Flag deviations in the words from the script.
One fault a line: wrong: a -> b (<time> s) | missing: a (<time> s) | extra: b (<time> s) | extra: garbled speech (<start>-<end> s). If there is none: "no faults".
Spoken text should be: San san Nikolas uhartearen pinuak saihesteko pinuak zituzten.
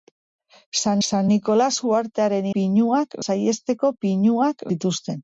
no faults